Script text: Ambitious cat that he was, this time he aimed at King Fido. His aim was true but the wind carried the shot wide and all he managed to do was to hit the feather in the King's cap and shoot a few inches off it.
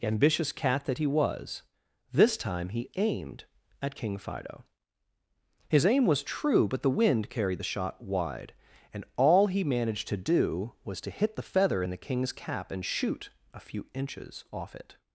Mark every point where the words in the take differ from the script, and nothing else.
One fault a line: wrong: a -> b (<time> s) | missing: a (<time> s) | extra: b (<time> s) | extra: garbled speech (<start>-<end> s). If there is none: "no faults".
no faults